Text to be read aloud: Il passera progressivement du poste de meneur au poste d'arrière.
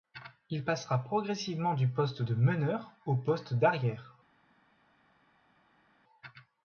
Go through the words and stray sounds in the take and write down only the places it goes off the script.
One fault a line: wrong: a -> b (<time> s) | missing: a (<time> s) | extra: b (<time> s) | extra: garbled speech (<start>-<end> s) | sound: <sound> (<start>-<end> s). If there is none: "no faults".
no faults